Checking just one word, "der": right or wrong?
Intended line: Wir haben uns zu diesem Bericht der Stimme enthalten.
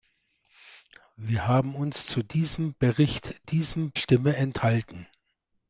wrong